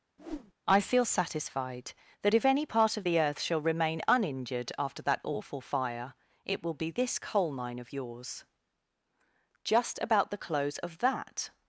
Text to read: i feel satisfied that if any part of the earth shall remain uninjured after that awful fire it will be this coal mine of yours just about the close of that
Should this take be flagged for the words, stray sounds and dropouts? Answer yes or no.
yes